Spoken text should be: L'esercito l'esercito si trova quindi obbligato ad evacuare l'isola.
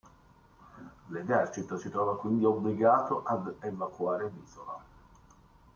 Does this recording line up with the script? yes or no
no